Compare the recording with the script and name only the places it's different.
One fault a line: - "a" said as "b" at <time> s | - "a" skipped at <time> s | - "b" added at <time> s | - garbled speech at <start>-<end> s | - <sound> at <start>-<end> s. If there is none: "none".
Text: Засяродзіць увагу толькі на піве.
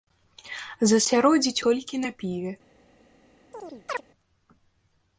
- "увагу" skipped at 1.6 s
- chirp at 3.5-4.0 s